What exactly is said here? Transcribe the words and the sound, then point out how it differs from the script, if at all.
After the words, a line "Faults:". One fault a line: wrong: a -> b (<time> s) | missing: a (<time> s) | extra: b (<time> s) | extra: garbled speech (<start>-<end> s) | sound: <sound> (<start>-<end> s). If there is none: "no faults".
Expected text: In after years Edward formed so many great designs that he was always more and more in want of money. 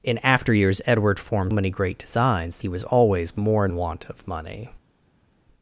In after years Edward formed many great designs he was always more and in want of money.
Faults:
missing: so (1.5 s)
missing: that (2.6 s)
missing: more (3.7 s)